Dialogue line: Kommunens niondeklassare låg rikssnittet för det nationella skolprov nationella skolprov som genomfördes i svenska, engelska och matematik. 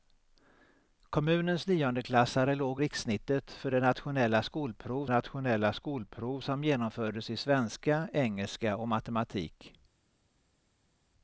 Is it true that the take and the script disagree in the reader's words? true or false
false